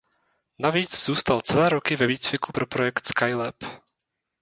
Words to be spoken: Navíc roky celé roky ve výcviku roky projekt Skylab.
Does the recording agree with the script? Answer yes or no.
no